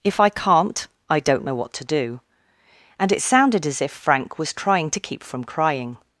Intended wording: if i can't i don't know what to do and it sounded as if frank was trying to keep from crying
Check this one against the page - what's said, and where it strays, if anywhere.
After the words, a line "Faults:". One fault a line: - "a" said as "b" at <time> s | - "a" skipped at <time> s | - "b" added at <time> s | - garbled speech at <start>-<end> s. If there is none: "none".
if i can't i don't know what to do and it sounded as if frank was trying to keep from crying
Faults:
none